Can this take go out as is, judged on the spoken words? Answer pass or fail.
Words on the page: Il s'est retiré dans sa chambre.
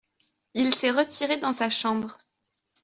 pass